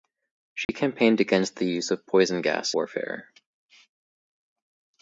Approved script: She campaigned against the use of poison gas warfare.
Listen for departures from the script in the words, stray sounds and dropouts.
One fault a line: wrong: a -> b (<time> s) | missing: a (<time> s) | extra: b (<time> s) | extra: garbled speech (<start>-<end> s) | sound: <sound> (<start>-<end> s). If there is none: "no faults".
sound: dropout (0.6-0.7 s)